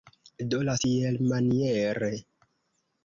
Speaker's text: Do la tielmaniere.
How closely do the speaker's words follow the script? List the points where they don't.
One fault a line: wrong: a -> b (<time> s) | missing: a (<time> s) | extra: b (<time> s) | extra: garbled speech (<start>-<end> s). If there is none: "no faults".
no faults